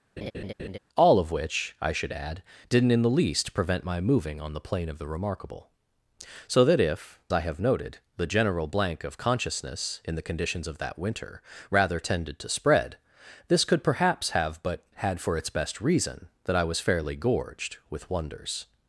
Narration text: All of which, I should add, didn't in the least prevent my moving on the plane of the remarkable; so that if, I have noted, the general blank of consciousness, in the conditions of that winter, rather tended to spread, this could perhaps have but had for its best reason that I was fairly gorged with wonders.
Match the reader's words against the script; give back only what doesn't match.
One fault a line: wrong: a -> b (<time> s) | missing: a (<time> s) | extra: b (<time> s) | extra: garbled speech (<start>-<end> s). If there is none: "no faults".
no faults